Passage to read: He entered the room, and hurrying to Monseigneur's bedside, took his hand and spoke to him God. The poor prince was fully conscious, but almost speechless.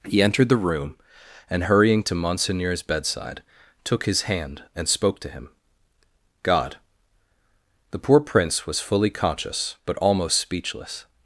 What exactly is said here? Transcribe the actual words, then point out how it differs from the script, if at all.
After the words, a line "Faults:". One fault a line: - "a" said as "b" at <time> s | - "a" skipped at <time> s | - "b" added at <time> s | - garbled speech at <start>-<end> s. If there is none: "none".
He entered the room, and hurrying to Monseigneur's bedside, took his hand and spoke to him God. The poor prince was fully conscious, but almost speechless.
Faults:
none